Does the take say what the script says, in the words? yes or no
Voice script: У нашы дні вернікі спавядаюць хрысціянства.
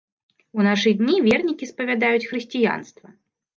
yes